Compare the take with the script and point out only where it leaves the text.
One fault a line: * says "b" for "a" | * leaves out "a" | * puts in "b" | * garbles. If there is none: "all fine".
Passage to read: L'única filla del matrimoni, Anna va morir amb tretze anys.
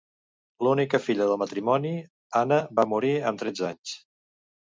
all fine